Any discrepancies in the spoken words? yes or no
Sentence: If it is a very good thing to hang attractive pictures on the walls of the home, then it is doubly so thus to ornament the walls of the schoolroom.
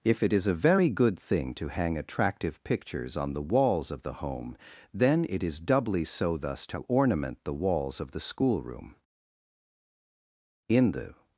yes